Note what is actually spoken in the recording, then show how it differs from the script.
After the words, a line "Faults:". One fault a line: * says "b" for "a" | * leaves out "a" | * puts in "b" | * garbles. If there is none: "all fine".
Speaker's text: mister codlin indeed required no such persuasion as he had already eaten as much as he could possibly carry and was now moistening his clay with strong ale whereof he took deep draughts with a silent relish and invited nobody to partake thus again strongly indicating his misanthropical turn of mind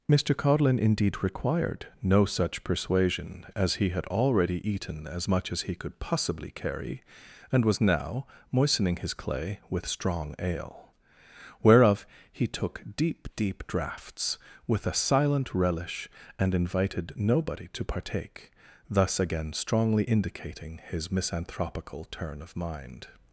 mister codlin indeed required no such persuasion as he had already eaten as much as he could possibly carry and was now moistening his clay with strong ale whereof he took deep deep draughts with a silent relish and invited nobody to partake thus again strongly indicating his misanthropical turn of mind
Faults:
* puts in "deep"